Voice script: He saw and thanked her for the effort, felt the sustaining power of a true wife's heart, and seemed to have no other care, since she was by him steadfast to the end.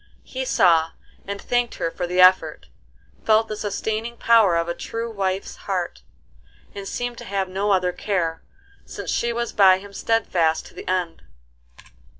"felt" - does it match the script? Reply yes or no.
yes